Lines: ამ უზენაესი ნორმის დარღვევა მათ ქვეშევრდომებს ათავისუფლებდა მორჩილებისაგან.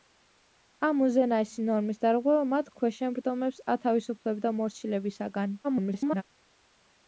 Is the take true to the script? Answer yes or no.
no